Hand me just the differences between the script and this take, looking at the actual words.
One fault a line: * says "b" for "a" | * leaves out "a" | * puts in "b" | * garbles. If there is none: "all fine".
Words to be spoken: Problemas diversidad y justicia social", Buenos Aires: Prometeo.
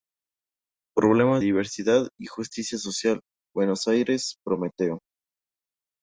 all fine